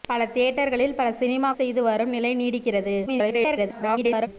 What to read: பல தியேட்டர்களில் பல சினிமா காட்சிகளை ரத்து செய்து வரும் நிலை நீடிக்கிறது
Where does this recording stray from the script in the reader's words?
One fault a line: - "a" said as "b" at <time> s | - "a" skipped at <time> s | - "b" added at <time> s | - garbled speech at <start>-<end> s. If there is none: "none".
- "காட்சிகளை ரத்து" skipped at 1.5 s
- garbled speech at 3.1-4.3 s